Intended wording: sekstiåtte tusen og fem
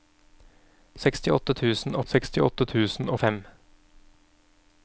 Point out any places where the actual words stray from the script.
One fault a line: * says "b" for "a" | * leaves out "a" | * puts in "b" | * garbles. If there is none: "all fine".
* puts in "sekstiåtte tusen"